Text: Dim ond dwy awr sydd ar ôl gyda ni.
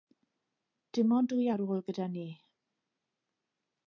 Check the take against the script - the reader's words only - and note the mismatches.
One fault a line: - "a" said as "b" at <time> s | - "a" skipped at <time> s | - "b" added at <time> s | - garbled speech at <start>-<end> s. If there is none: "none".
- "awr sydd" skipped at 1.4 s